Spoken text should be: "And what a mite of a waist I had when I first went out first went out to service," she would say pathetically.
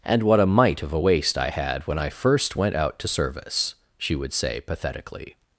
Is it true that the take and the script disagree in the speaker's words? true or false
true